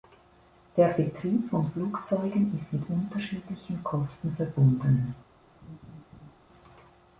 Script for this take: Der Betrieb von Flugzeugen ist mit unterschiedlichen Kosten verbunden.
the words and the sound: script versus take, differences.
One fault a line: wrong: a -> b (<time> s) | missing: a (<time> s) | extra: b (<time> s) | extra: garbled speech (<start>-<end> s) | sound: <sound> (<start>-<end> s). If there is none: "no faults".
sound: laugh (5.6-6.3 s)